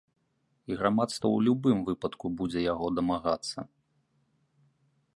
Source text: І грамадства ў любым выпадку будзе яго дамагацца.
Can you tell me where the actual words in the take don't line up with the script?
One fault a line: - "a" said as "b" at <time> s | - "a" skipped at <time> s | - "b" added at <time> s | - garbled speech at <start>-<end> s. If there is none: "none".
none